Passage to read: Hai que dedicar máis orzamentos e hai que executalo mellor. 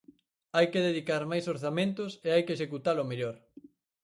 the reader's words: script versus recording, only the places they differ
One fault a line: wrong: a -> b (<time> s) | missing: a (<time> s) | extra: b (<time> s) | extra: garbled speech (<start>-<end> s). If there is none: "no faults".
no faults